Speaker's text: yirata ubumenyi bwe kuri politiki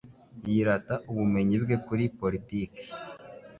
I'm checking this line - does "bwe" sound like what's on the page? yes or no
yes